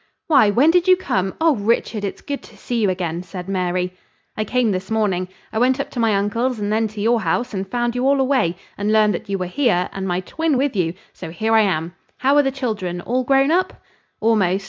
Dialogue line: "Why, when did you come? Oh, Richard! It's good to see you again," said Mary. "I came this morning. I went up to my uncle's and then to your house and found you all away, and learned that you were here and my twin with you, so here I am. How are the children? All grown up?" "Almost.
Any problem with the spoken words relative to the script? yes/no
no